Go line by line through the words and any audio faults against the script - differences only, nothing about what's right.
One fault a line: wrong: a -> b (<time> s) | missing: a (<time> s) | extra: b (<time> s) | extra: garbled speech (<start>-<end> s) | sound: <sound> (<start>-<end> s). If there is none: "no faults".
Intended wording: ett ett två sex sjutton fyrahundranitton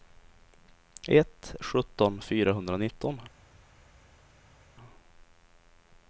missing: ett två sex (1.6 s)